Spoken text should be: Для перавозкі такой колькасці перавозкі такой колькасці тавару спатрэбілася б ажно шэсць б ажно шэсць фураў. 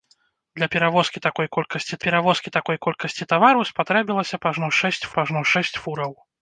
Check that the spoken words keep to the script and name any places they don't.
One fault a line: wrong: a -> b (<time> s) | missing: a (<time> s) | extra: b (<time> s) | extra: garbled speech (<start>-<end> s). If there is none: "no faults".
no faults